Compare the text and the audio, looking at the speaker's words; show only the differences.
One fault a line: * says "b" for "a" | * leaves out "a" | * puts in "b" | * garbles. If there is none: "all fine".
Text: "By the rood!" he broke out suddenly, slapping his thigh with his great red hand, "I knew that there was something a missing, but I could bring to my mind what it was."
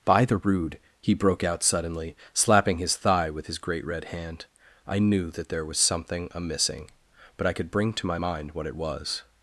all fine